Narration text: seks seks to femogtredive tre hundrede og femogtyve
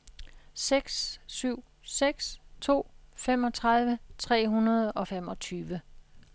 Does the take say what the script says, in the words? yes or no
no